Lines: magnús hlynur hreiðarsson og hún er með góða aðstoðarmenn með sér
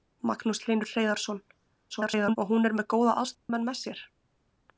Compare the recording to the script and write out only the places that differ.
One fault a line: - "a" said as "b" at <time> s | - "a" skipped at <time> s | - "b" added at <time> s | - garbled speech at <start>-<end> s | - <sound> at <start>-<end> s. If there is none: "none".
- garbled speech at 1.9-2.4 s
- dropout at 3.3-3.5 s